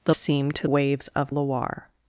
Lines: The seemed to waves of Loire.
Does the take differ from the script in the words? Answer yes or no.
no